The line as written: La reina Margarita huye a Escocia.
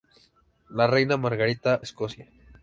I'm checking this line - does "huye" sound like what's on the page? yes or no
no